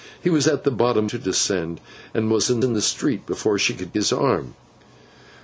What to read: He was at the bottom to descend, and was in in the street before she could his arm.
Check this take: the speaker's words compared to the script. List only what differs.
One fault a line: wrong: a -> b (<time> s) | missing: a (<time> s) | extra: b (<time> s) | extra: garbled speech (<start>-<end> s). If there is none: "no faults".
no faults